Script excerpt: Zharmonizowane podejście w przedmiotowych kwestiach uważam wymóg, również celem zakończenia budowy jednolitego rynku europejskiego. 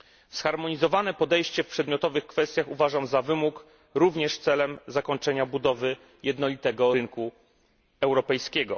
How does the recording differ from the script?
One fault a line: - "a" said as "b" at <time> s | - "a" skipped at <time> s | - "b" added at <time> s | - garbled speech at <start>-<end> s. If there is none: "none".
- "za" added at 3.1 s